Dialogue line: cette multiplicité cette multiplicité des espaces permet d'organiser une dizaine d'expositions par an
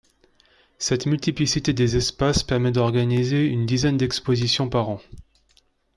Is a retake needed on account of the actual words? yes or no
yes